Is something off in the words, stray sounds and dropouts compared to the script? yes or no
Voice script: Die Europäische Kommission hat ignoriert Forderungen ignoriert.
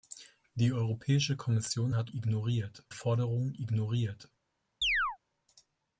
yes